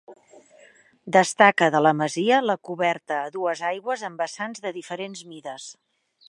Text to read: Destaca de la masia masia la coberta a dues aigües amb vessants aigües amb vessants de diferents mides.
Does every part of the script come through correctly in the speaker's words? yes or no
no